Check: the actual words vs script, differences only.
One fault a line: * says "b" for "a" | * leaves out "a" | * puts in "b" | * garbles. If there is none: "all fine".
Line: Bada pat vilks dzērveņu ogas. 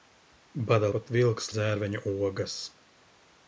all fine